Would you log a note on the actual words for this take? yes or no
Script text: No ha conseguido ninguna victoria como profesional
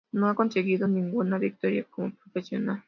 no